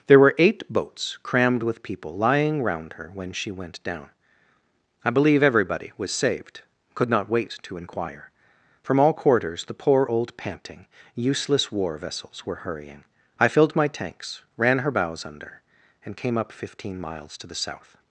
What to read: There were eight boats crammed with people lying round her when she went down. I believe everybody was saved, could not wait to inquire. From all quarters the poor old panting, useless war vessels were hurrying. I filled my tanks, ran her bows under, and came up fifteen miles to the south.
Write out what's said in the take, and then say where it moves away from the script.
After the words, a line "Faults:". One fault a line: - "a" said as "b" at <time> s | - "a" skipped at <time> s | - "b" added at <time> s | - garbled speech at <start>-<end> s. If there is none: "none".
There were eight boats crammed with people lying round her when she went down. I believe everybody was saved, could not wait to inquire. From all quarters the poor old panting, useless war vessels were hurrying. I filled my tanks, ran her bows under, and came up fifteen miles to the south.
Faults:
none